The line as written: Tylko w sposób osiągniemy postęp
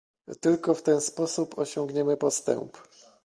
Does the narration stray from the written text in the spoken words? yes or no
yes